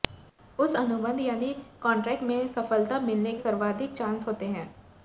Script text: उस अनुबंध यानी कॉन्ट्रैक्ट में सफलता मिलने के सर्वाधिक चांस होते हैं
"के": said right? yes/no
no